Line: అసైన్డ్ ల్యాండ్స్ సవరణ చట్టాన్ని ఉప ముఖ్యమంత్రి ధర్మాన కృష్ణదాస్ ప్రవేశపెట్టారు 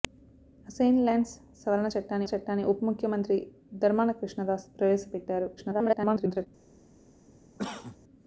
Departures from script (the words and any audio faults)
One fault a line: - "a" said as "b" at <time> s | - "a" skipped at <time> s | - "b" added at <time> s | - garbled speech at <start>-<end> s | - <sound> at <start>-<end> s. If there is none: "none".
- "చట్టాన్ని" added at 2.3 s
- garbled speech at 5.6-6.5 s
- cough at 7.6-8.0 s